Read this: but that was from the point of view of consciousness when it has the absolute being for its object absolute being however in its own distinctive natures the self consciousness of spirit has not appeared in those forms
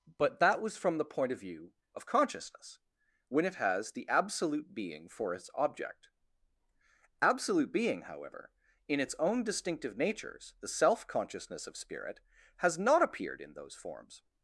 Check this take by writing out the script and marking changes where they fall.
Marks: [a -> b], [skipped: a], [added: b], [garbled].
but that was from the point of view of consciousness when it has the absolute being for its object absolute being however in its own distinctive natures the self consciousness of spirit has not appeared in those forms